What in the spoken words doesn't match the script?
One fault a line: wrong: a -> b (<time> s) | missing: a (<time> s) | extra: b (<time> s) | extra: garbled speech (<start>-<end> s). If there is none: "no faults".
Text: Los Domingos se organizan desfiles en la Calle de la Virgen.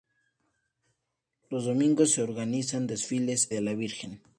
missing: en la Calle (3.5 s)